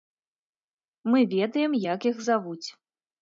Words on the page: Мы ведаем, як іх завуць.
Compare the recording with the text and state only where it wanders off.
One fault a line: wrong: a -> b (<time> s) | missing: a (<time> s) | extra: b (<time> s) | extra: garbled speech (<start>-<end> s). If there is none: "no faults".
no faults